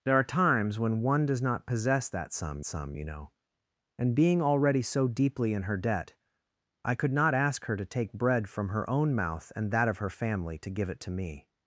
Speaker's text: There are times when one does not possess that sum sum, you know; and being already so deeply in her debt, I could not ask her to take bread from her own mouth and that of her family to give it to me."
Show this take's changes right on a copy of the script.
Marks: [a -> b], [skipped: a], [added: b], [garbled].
There are times when one does not possess that sum sum, you know; and being already so deeply in her debt, I could not ask her to take bread from her own mouth and that of her family to give it to me."